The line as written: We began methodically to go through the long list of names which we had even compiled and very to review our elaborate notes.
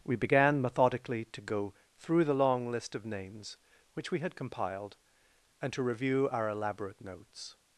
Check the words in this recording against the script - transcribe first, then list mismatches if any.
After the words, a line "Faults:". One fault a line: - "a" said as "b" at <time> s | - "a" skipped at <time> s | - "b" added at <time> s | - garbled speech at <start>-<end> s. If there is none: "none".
We began methodically to go through the long list of names which we had compiled and to review our elaborate notes.
Faults:
- "even" skipped at 4.3 s
- "very" skipped at 5.7 s